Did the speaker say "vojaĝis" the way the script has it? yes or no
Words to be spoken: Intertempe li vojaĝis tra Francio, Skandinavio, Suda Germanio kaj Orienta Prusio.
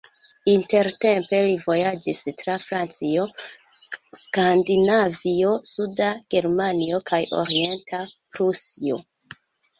yes